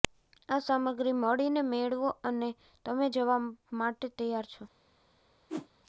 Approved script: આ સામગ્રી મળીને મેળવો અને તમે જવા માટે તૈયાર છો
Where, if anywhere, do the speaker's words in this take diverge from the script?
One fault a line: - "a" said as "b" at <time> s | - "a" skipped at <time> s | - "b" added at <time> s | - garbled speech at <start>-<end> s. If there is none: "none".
none